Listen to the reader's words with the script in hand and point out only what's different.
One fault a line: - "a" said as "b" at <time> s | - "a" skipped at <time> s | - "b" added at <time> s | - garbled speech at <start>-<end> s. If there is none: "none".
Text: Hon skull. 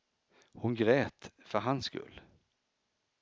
- "grät för hans" added at 0.8 s